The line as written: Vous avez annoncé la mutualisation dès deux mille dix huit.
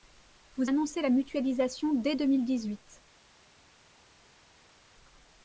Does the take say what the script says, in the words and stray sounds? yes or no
no